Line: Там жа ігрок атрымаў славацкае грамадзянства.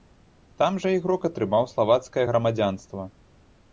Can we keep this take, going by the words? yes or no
yes